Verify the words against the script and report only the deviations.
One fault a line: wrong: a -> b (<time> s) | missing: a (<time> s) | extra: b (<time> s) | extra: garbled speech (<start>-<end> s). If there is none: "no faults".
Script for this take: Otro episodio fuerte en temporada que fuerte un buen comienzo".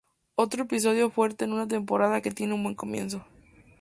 extra: una (1.5 s)
wrong: fuerte -> tiene (2.3 s)